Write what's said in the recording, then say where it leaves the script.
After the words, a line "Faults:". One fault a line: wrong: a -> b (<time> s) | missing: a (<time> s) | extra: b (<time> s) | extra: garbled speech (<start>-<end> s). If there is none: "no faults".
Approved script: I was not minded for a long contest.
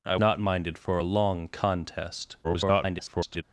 I not minded for a long contest. [garbled]
Faults:
missing: was (0.1 s)
extra: garbled speech (2.4-3.4 s)